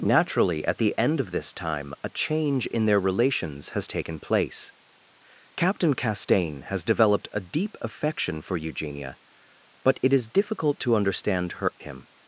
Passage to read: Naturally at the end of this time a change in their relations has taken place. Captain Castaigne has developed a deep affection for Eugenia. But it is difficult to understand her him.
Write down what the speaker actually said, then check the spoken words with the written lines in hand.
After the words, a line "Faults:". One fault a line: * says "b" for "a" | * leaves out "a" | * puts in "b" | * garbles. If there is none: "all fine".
Naturally at the end of this time a change in their relations has taken place. Captain Castaigne has developed a deep affection for Eugenia. But it is difficult to understand her him.
Faults:
all fine